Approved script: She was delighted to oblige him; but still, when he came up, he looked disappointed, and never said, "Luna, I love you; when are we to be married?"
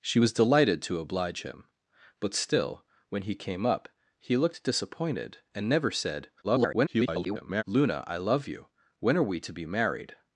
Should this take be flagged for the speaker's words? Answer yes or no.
yes